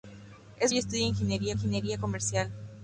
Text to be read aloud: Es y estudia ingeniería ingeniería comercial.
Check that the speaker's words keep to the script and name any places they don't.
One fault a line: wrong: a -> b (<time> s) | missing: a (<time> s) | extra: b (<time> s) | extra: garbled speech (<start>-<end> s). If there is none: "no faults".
no faults